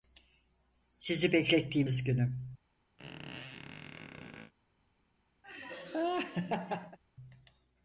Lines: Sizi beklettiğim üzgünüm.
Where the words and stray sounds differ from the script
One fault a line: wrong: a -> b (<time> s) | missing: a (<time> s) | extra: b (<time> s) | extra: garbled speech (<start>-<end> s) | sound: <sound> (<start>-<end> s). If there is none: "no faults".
sound: squeak (3.0-4.5 s)
sound: laugh (5.4-7.0 s)